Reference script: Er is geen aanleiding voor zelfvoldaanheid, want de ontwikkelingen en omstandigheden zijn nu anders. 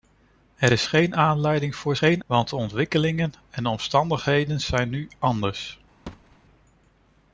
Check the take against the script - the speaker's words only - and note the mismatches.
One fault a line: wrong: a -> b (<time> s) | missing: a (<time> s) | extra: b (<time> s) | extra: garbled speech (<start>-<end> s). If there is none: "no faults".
wrong: zelfvoldaanheid -> geen (2.0 s)